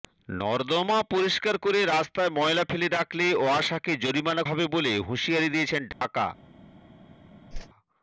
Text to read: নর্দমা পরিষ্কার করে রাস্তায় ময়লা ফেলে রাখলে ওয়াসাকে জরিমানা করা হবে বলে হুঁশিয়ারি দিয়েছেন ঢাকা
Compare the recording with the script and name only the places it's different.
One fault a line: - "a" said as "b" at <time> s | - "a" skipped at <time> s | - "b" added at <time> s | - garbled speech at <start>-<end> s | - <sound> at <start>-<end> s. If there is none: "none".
- "করা" skipped at 4.4 s
- dropout at 5.9-6.0 s
- whoosh at 7.5-7.7 s